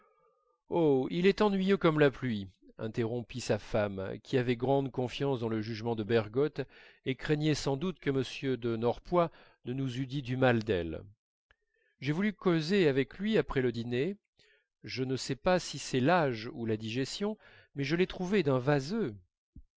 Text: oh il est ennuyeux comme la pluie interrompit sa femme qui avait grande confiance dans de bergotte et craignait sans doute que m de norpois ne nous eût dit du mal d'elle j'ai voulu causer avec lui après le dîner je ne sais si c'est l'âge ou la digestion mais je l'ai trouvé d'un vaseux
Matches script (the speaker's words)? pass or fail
fail